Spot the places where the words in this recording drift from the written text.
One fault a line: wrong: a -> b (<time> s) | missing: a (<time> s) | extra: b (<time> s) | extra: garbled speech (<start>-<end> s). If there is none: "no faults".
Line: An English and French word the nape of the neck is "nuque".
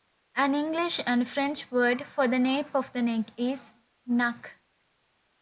extra: for (2.1 s)